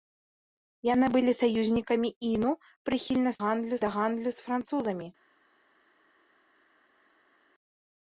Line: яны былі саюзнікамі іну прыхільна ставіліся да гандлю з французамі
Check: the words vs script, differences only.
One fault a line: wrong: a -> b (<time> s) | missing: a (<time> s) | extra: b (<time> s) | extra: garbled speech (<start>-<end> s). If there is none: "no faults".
wrong: ставіліся -> гандлю (3.4 s)